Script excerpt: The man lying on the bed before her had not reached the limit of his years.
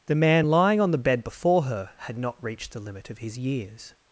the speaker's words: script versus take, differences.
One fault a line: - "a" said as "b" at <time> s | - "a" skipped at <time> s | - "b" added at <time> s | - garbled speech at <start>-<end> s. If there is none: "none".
none